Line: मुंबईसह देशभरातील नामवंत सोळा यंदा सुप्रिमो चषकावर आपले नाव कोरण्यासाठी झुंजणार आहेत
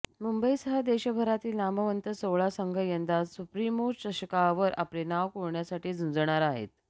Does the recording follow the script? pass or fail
fail